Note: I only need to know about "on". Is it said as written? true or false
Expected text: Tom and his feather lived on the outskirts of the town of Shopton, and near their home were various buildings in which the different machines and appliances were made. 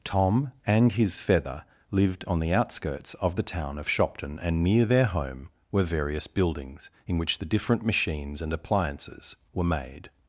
true